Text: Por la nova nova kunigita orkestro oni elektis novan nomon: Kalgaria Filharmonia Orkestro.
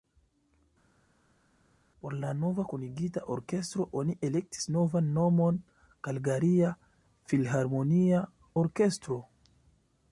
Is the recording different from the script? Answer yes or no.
yes